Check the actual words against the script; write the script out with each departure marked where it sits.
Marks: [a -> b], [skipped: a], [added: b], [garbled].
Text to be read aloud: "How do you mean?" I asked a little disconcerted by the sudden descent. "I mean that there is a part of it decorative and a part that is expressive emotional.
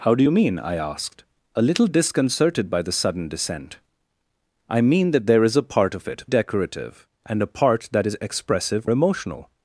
"How do you mean?" I asked a little disconcerted by the sudden descent. "I mean that there is a part of it decorative and a part that is expressive emotional.